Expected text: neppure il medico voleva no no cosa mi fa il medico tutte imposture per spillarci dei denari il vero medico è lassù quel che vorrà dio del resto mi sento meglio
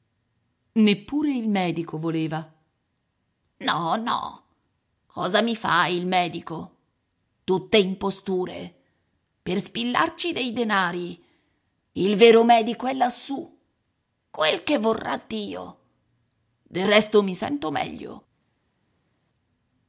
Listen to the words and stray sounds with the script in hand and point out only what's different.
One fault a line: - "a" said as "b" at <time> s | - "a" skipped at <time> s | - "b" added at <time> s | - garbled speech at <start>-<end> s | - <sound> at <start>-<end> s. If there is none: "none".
none